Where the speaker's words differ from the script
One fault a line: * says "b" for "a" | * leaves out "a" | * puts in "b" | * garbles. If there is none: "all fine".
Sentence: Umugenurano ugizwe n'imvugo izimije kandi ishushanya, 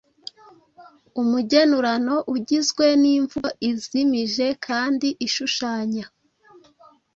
all fine